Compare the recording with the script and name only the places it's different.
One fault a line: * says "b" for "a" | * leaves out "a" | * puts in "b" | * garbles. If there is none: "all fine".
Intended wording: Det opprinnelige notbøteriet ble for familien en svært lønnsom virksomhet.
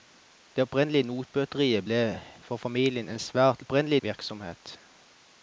* says "opprinnelige" for "lønnsom"